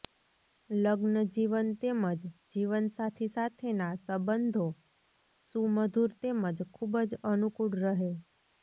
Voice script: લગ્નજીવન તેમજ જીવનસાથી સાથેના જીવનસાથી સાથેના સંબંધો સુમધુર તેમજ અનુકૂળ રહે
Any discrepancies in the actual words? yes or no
yes